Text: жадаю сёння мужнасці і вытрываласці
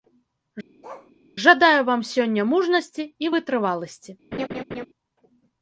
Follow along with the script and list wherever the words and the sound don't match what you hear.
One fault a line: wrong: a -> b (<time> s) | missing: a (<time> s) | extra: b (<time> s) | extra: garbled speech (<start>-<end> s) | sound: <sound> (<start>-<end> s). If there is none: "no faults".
sound: bark (0.8-1.1 s)
extra: вам (1.9 s)
sound: laugh (4.3-4.9 s)